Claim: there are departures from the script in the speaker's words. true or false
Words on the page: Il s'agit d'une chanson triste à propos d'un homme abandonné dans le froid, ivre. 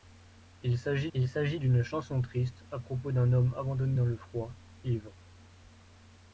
true